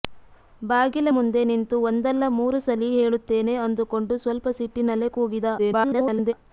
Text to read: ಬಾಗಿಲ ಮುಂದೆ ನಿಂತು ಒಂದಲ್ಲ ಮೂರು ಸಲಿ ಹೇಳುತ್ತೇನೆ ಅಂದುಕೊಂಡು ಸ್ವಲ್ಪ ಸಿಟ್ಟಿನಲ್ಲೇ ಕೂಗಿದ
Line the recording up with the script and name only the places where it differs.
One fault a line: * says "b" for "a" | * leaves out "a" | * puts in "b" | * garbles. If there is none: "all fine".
* garbles